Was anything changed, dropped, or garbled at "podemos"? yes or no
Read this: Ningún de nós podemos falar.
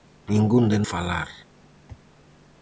yes